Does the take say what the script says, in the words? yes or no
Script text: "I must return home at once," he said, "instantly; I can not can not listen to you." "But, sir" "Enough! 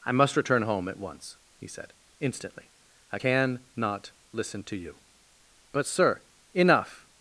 no